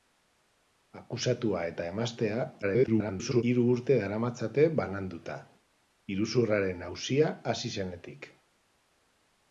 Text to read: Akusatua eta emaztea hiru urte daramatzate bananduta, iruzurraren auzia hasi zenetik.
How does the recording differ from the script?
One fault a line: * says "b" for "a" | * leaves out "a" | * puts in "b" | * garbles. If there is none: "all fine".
* garbles